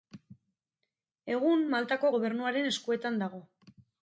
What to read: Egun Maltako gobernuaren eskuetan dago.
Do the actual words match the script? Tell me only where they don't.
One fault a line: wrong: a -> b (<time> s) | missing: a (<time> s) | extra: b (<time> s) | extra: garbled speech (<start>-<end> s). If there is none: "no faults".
no faults